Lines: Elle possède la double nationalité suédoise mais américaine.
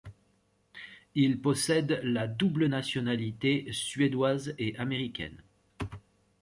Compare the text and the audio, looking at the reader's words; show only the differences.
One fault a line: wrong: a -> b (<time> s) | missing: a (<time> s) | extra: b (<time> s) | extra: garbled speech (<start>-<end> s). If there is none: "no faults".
wrong: Elle -> Il (1.1 s)
wrong: mais -> et (4.6 s)